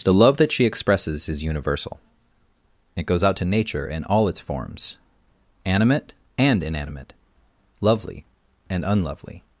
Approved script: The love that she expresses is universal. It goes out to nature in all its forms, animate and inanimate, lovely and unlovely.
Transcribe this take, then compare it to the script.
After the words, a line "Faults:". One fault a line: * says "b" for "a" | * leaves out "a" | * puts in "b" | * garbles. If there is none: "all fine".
The love that she expresses is universal. It goes out to nature in all its forms, animate and inanimate, lovely and unlovely.
Faults:
all fine